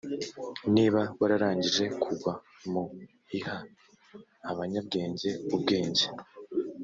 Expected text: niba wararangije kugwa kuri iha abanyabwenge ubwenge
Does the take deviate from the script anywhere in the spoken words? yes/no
yes